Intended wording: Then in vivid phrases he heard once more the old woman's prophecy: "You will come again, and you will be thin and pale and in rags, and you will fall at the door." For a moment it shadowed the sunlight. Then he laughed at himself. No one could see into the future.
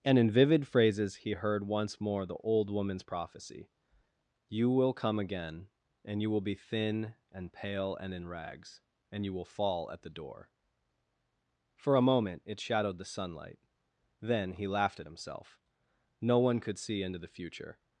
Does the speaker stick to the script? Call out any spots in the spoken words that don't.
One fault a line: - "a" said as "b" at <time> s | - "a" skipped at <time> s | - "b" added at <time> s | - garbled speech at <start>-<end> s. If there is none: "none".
- "Then" said as "And" at 0.0 s